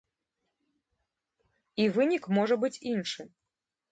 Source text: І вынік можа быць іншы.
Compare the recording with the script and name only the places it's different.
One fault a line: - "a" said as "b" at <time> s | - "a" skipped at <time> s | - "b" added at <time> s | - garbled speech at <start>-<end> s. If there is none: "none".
none